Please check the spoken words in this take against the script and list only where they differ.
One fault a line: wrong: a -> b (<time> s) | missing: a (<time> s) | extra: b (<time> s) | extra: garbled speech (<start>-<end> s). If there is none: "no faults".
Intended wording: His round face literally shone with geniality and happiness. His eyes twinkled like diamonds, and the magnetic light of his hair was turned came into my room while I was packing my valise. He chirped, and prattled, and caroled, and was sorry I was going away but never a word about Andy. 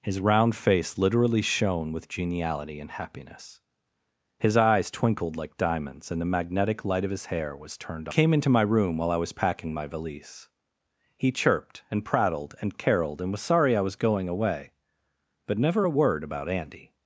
no faults